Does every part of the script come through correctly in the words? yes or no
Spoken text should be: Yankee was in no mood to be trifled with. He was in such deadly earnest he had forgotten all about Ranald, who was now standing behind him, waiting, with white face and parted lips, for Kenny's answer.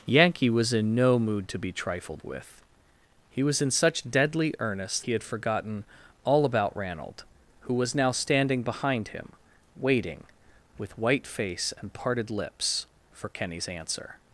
yes